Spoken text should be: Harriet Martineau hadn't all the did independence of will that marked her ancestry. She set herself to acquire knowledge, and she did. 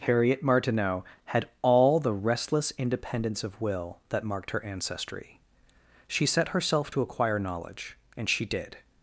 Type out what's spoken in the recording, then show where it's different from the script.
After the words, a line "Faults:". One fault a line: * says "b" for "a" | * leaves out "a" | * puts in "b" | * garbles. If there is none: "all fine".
Harriet Martineau had all the restless independence of will that marked her ancestry. She set herself to acquire knowledge, and she did.
Faults:
* says "had" for "hadn't"
* says "restless" for "did"